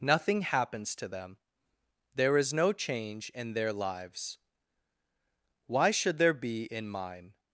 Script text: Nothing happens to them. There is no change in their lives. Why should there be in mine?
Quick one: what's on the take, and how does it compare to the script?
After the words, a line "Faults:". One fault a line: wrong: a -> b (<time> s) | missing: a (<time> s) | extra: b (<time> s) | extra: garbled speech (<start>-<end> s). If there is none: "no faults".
Nothing happens to them. There is no change in their lives. Why should there be in mine?
Faults:
no faults